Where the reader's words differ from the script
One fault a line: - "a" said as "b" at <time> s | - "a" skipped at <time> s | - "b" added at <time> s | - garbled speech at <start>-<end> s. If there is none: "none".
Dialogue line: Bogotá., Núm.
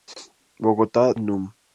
none